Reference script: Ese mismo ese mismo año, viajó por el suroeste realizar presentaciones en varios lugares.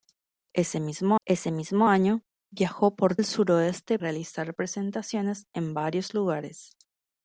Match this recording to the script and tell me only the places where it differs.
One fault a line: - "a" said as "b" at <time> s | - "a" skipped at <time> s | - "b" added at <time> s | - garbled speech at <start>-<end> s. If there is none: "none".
none